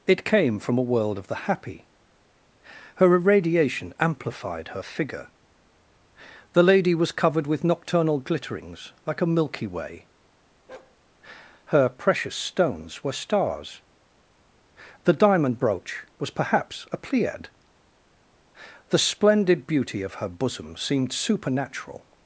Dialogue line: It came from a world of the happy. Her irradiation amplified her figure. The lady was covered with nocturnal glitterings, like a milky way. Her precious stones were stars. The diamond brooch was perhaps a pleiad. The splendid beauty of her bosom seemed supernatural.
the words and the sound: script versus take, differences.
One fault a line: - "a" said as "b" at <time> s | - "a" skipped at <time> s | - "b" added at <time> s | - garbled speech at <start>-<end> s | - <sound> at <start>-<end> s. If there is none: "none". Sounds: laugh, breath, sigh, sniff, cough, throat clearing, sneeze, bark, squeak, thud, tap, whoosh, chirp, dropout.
- bark at 10.7-11.0 s